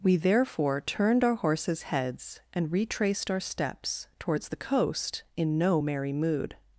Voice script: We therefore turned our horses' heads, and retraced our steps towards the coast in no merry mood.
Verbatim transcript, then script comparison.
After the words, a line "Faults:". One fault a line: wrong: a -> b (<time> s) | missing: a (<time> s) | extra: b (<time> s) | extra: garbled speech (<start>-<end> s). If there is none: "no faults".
We therefore turned our horses' heads, and retraced our steps towards the coast in no merry mood.
Faults:
no faults